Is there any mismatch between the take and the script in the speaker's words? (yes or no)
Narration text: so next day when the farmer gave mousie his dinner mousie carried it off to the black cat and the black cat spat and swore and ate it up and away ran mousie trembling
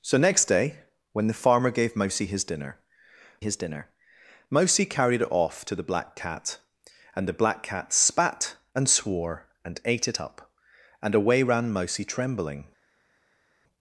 yes